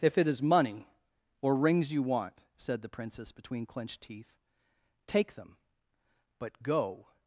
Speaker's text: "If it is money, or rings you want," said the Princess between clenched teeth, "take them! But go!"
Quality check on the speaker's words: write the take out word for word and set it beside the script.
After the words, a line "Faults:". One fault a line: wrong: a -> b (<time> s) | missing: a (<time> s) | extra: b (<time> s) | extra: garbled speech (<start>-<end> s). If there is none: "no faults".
"If it is money, or rings you want," said the Princess between clenched teeth, "take them! But go!"
Faults:
no faults